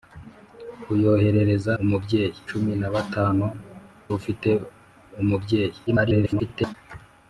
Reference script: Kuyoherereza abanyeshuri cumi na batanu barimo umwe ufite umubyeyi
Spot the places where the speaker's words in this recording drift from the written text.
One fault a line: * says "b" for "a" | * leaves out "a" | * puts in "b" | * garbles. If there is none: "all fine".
* says "umubyeyi" for "abanyeshuri"
* leaves out "barimo umwe"
* garbles